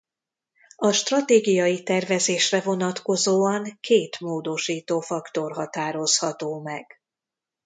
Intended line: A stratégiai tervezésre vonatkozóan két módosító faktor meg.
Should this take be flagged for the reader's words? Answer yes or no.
yes